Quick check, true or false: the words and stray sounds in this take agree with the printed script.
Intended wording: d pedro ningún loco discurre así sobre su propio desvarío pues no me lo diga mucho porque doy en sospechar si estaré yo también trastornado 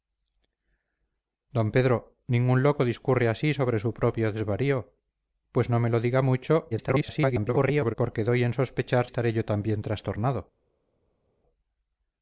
false